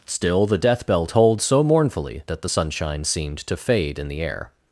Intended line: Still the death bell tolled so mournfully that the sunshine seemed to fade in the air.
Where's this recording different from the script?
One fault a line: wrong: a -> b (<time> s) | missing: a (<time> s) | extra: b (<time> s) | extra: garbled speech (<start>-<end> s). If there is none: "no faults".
no faults